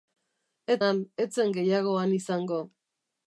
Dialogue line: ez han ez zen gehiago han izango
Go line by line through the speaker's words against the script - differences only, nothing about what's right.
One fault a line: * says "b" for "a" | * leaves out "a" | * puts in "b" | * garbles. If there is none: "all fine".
all fine